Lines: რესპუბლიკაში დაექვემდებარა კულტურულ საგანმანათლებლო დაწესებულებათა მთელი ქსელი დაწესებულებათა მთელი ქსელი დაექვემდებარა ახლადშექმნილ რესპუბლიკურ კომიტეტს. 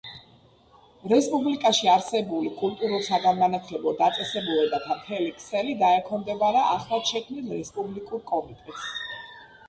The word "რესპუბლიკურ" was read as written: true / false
true